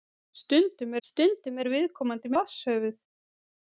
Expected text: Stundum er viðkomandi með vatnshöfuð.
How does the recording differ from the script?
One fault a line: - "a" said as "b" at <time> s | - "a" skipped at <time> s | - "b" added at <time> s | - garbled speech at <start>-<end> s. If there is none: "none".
- "stundum" added at 1.1 s
- "með" skipped at 2.3 s